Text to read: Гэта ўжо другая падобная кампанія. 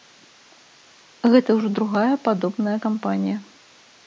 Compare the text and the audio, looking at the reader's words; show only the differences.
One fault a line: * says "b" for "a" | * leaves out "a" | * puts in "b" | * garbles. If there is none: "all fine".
all fine